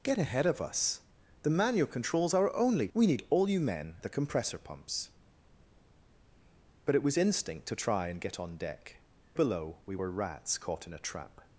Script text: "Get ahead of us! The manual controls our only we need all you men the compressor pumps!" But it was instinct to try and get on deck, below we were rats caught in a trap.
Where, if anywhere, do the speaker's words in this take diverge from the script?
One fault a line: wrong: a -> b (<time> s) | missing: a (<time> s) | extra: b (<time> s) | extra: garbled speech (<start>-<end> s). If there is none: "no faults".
no faults